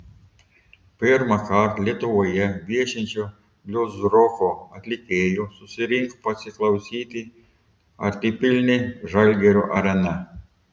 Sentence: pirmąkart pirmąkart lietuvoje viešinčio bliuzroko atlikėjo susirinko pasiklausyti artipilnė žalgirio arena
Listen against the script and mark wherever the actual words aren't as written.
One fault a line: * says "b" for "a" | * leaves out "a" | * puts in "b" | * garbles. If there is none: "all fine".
* leaves out "pirmąkart"